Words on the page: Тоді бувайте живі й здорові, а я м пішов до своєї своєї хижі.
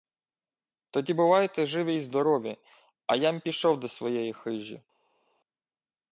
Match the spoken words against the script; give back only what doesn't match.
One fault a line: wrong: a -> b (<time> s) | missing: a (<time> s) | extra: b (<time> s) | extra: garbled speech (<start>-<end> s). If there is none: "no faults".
missing: своєї (4.3 s)